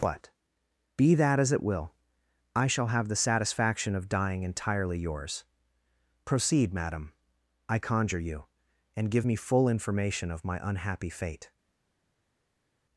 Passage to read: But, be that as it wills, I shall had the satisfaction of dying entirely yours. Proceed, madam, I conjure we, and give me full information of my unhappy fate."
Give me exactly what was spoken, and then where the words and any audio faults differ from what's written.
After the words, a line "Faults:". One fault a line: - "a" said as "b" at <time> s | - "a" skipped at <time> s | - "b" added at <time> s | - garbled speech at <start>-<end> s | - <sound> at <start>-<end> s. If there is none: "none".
But, be that as it will, I shall have the satisfaction of dying entirely yours. Proceed, madam, I conjure you, and give me full information of my unhappy fate."
Faults:
- "wills" said as "will" at 1.6 s
- "had" said as "have" at 2.9 s
- "we" said as "you" at 8.2 s